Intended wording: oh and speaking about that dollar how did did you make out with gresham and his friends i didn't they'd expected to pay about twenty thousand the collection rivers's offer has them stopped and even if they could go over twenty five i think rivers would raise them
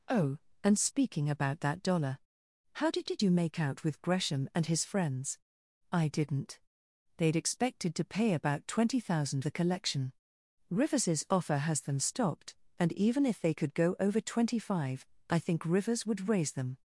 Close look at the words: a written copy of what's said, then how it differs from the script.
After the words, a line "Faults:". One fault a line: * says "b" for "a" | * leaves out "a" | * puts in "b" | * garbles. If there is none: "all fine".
oh and speaking about that dollar how did did you make out with gresham and his friends i didn't they'd expected to pay about twenty thousand the collection rivers's offer has them stopped and even if they could go over twenty five i think rivers would raise them
Faults:
all fine